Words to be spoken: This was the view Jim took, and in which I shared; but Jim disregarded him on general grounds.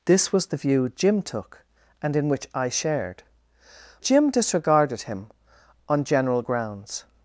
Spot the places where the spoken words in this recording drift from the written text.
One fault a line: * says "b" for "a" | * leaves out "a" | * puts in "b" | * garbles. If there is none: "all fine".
* leaves out "but"